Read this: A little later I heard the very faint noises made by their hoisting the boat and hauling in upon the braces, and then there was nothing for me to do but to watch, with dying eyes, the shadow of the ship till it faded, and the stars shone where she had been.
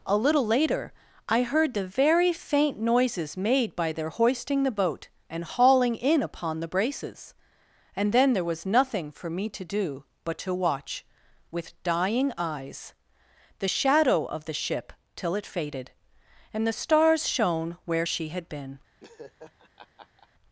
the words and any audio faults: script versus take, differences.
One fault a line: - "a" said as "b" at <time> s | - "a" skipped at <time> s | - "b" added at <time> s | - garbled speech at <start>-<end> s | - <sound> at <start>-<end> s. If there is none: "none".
- laugh at 19.0-20.3 s